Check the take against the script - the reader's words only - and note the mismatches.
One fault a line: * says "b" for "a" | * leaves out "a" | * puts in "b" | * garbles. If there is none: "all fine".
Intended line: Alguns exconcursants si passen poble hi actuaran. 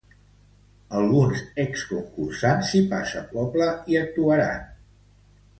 all fine